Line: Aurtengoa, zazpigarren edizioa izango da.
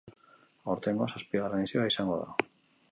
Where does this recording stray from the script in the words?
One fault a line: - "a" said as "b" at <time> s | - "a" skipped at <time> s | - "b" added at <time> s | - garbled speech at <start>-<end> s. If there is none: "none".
none